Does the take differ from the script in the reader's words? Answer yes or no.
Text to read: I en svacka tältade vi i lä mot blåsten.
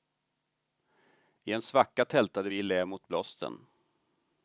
no